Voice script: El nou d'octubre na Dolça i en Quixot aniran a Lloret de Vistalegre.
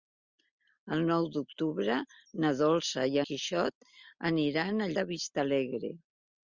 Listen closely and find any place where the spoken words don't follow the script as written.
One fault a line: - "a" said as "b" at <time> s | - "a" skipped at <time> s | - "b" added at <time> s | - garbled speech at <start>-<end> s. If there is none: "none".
- "en" skipped at 3.2 s
- "Lloret" skipped at 4.9 s